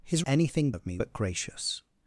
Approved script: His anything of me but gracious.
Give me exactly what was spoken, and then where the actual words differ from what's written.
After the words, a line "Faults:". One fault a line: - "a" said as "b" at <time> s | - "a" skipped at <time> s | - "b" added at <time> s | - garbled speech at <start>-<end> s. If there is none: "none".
His anything of me but gracious.
Faults:
none